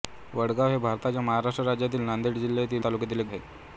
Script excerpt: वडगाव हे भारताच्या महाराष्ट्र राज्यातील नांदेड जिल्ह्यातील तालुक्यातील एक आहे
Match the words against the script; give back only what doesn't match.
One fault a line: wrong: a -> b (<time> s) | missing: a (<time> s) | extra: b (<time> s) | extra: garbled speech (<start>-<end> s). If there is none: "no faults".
no faults